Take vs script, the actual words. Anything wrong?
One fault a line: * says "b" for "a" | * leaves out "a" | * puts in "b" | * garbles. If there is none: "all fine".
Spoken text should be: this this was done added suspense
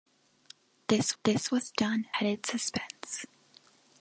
all fine